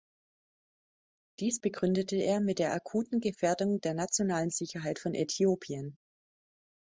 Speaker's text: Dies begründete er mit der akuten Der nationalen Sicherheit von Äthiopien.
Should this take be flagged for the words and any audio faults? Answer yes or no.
yes